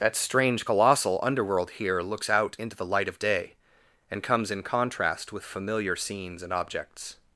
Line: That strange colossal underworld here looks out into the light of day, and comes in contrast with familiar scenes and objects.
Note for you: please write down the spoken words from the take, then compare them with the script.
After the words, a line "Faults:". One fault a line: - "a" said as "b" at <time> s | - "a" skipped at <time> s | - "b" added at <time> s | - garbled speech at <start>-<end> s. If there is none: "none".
That strange colossal underworld here looks out into the light of day, and comes in contrast with familiar scenes and objects.
Faults:
none